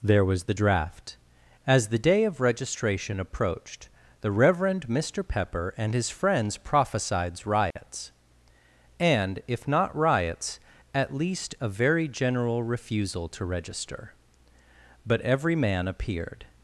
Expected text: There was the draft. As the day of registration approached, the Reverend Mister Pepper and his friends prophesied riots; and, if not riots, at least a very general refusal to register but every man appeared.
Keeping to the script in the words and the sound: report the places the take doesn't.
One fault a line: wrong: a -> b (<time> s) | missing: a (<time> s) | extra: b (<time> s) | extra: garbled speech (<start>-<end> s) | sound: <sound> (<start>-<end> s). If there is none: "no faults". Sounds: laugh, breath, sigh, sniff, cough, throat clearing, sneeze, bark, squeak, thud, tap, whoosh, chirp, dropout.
sound: dropout (7.7-7.8 s)